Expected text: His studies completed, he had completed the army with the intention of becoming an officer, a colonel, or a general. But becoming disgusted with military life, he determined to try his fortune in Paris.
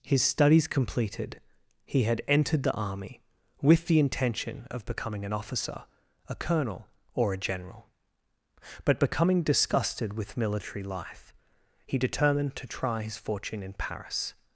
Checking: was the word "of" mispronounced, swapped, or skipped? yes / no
no